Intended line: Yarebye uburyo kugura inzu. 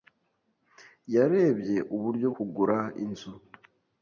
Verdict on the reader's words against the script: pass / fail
pass